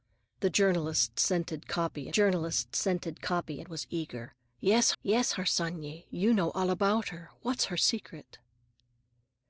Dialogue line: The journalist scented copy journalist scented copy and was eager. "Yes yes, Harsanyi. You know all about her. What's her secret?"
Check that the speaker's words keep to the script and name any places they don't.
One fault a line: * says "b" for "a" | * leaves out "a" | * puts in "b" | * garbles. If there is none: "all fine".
all fine